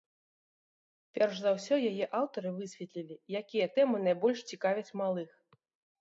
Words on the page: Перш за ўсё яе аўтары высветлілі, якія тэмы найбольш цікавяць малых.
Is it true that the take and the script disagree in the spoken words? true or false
false